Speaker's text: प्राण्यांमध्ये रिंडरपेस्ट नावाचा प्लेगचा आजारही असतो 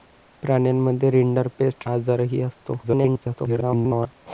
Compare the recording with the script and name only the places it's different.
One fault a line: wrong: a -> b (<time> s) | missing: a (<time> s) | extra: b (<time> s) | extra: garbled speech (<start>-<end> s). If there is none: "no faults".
missing: नावाचा प्लेगचा (1.9 s)
extra: garbled speech (2.8-4.2 s)